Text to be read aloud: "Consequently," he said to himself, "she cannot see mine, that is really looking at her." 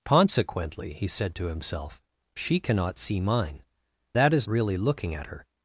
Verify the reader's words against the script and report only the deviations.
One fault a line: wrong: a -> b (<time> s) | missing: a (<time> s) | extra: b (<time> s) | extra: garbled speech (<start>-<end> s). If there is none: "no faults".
no faults